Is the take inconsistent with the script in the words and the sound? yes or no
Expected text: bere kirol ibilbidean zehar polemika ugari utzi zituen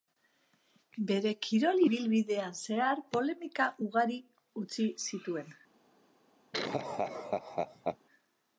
yes